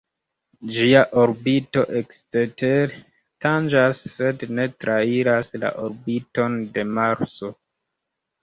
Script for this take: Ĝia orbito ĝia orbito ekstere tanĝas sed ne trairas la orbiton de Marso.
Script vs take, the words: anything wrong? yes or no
yes